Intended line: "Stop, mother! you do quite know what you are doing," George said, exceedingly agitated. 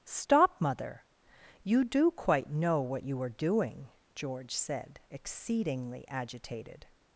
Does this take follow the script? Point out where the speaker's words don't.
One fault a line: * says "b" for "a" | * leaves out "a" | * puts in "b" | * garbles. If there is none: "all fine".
all fine